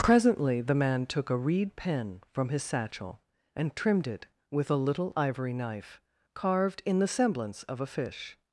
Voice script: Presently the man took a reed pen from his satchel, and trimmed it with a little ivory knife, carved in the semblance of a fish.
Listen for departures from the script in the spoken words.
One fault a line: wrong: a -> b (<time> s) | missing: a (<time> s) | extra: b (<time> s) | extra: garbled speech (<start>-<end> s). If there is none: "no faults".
no faults